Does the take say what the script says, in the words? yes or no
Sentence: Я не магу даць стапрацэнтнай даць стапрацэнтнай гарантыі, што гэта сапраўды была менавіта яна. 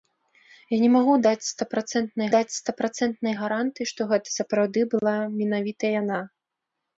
yes